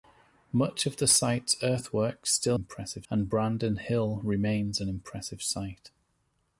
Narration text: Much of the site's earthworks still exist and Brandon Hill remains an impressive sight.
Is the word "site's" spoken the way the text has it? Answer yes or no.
yes